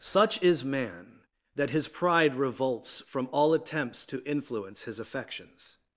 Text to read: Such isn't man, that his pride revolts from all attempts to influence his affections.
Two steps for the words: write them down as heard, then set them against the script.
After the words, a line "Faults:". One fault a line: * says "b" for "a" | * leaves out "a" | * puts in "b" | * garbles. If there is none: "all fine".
Such is man, that his pride revolts from all attempts to influence his affections.
Faults:
* says "is" for "isn't"